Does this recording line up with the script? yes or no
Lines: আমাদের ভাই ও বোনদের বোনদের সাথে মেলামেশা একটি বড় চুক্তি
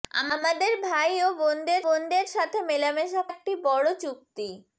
yes